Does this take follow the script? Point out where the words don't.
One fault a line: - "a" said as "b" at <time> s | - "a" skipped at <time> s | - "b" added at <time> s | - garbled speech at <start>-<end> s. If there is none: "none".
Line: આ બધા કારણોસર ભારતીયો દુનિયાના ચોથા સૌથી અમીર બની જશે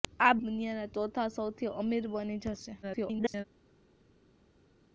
- "બધા કારણોસર ભારતીયો" skipped at 0.4 s
- garbled speech at 2.8-3.4 s